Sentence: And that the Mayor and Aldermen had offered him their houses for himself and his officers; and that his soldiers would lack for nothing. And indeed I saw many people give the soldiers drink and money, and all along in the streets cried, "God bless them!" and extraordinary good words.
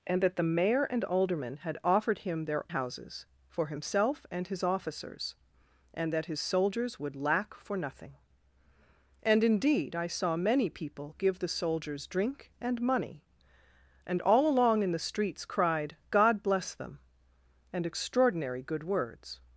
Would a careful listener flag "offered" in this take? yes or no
no